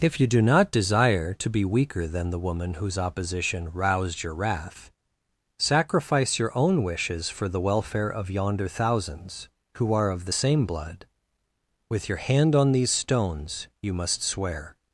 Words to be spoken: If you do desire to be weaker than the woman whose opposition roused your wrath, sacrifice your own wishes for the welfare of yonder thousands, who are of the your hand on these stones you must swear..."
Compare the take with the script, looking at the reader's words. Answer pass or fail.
fail